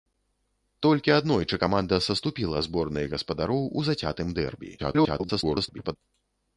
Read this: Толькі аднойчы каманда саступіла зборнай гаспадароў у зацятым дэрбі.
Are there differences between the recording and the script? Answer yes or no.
yes